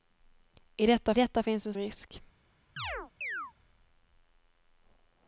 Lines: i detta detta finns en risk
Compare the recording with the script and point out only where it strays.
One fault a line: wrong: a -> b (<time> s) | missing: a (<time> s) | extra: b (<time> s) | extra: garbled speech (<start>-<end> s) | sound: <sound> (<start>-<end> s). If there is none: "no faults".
sound: chirp (2.8-3.5 s)